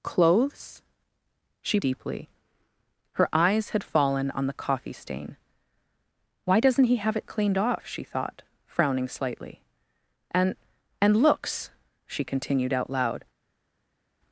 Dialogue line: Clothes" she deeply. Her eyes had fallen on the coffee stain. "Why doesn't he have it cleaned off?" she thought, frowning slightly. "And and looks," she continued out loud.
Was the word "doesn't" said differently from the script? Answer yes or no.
no